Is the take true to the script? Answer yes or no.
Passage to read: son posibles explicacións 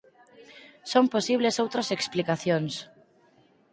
no